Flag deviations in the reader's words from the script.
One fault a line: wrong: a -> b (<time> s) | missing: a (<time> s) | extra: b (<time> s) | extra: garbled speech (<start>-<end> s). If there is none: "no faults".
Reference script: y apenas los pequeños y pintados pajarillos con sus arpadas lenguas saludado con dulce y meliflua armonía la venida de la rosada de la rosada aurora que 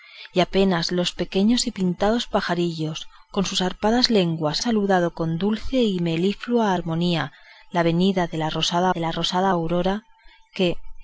no faults